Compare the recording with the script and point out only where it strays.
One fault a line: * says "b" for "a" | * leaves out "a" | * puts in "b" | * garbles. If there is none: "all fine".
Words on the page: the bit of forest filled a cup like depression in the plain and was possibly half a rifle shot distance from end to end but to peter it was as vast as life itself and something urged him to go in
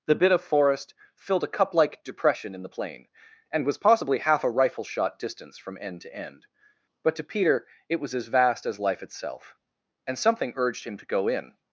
all fine